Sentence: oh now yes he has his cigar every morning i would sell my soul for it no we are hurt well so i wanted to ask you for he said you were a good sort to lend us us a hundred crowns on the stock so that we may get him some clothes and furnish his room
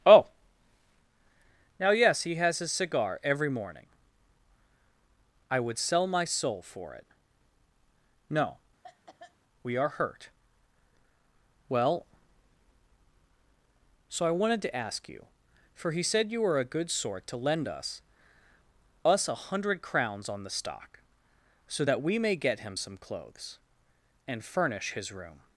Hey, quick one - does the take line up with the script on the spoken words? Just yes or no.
yes